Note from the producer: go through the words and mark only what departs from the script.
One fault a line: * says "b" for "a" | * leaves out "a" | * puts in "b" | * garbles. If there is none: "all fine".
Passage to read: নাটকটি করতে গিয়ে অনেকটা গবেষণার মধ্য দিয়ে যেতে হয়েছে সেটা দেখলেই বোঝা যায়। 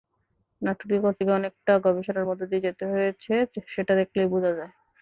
all fine